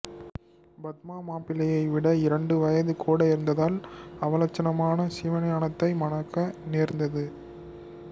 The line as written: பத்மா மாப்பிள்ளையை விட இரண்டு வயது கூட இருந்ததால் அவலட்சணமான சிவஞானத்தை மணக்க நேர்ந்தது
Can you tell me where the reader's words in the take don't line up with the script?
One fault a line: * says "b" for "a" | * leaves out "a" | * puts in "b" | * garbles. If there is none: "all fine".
all fine